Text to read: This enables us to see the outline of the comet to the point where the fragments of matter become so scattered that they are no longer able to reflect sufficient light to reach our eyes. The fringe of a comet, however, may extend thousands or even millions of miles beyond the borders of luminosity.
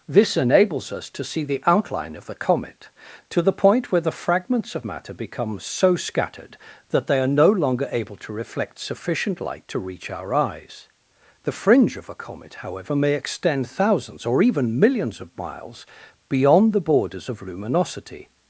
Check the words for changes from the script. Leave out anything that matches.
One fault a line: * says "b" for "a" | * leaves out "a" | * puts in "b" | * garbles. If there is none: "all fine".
all fine